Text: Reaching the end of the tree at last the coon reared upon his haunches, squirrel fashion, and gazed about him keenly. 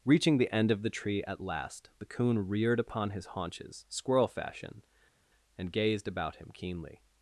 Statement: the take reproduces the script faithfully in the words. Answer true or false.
true